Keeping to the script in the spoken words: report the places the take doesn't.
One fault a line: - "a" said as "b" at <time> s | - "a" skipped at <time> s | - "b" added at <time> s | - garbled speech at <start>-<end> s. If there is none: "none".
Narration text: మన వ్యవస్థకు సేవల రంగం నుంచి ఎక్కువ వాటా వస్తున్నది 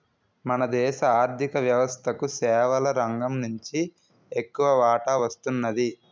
- "దేశ ఆర్ధిక" added at 0.7 s